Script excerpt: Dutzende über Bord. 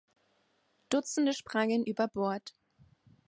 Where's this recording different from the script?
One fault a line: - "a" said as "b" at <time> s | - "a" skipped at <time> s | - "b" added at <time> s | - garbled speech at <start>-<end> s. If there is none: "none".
- "sprangen" added at 1.3 s